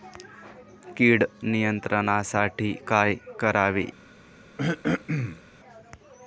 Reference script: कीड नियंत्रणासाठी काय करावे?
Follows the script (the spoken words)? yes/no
yes